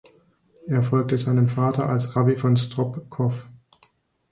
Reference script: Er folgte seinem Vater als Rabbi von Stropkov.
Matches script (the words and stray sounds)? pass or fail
pass